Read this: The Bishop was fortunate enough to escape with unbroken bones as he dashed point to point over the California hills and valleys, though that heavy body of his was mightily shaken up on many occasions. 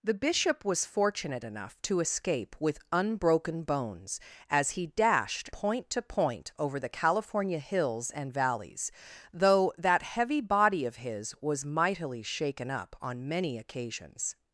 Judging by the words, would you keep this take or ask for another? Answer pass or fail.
pass